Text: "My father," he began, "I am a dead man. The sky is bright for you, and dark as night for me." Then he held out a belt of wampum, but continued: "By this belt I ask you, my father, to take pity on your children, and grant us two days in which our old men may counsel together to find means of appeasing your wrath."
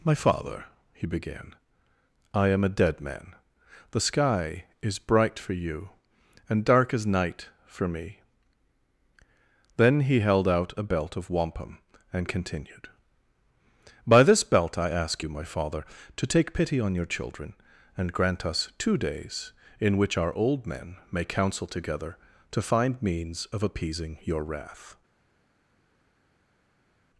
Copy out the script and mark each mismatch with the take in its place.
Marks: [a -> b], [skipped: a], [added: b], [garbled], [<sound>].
"My father," he began, "I am a dead man. The sky is bright for you, and dark as night for me." Then he held out a belt of wampum, [but -> and] continued: "By this belt I ask you, my father, to take pity on your children, and grant us two days in which our old men may counsel together to find means of appeasing your wrath."